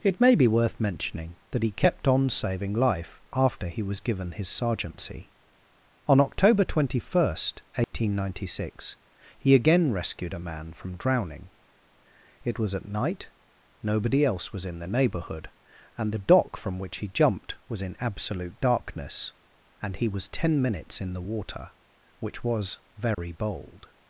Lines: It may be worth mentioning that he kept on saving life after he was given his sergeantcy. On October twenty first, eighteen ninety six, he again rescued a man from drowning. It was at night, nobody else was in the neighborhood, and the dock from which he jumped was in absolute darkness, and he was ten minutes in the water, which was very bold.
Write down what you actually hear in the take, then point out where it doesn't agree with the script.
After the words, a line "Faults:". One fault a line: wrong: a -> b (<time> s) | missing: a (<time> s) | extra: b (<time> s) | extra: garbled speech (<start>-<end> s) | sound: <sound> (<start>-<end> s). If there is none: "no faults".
It may be worth mentioning that he kept on saving life after he was given his sergeantcy. On October twenty first, eighteen ninety six, he again rescued a man from drowning. It was at night, nobody else was in the neighborhood, and the dock from which he jumped was in absolute darkness, and he was ten minutes in the water, which was very bold.
Faults:
sound: dropout (7.8-7.9 s)
sound: dropout (23.1-23.2 s)